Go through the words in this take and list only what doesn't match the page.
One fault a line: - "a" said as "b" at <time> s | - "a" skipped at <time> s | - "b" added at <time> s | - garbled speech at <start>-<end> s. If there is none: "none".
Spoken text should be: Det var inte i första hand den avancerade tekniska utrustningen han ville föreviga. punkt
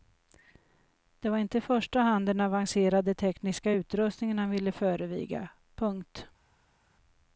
none